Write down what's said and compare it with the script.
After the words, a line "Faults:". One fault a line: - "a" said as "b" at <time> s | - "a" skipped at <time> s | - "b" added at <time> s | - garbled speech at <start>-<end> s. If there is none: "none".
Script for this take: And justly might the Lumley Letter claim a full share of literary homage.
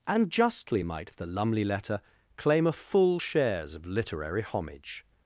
And justly might the Lumley Letter claim a full shares of literary homage.
Faults:
- "share" said as "shares" at 3.2 s